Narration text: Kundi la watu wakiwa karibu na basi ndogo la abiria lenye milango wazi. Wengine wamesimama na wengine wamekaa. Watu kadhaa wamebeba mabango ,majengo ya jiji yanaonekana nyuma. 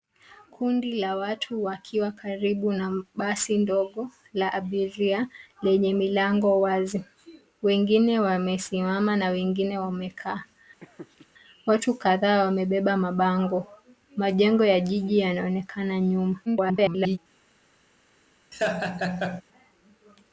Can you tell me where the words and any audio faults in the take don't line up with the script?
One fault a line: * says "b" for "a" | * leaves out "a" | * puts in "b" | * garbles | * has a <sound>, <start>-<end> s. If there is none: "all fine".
* has a laugh, 10.8-11.3 s
* garbles
* has a laugh, 18.5-19.4 s